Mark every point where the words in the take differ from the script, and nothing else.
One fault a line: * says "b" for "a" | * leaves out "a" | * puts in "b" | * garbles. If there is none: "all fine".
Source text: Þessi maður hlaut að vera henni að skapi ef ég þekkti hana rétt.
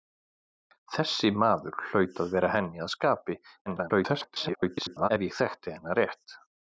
* garbles